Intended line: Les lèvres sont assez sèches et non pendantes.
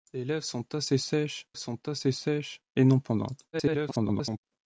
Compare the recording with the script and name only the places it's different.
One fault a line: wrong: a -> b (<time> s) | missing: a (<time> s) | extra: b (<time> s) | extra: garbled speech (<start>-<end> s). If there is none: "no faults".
extra: sont assez sèches (1.6 s)
extra: garbled speech (3.5-4.4 s)